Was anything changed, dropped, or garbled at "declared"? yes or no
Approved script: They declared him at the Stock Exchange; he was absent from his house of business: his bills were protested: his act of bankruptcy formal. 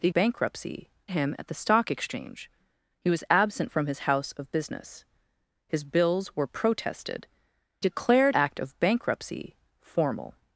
yes